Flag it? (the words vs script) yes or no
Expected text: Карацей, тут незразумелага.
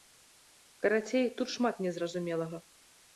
yes